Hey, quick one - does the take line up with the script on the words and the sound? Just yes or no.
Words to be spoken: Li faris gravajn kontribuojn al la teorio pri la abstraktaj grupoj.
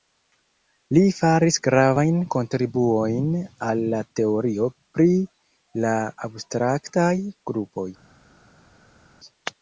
yes